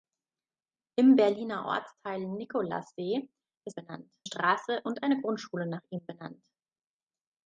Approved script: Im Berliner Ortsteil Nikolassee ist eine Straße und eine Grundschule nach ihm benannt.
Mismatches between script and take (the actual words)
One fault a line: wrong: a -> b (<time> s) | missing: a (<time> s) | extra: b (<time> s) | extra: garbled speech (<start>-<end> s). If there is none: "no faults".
wrong: eine -> benannt (3.7 s)